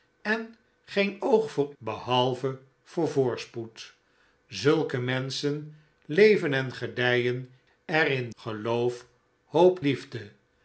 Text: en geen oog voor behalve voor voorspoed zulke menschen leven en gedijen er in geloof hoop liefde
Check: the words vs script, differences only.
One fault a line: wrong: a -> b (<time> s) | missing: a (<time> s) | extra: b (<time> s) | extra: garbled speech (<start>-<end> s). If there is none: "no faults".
no faults